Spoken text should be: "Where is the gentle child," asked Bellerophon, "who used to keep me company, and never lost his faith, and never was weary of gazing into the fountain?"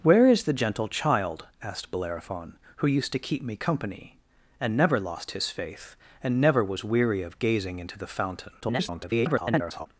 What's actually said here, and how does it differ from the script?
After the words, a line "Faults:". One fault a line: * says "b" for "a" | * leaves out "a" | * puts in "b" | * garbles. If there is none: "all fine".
"Where is the gentle child," asked Bellerophon, "who used to keep me company, and never lost his faith, and never was weary of gazing into the fountain?" [garbled]
Faults:
* garbles